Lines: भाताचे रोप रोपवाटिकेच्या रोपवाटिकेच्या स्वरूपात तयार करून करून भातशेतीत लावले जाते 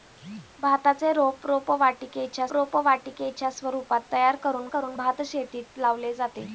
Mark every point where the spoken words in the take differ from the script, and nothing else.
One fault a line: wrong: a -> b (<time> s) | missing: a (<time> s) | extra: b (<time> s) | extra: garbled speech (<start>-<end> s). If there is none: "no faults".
no faults